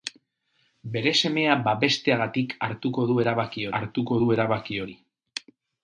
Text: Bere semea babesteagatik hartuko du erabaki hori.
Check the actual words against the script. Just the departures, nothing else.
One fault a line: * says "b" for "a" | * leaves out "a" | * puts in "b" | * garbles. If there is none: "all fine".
* puts in "hartuko du erabaki"